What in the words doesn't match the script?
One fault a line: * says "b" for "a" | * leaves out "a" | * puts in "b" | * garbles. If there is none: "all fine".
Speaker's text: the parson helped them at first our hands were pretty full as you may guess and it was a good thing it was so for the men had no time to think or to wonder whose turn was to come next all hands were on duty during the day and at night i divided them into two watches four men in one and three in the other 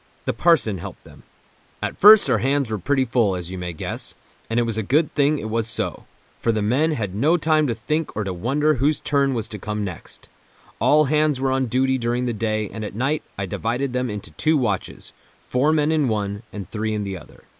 all fine